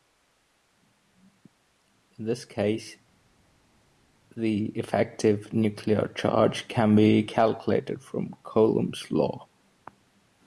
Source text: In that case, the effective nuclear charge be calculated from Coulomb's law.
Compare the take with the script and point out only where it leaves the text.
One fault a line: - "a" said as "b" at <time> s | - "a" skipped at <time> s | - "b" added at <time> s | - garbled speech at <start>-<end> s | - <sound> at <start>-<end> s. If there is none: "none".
- "that" said as "this" at 2.2 s
- "can" added at 6.7 s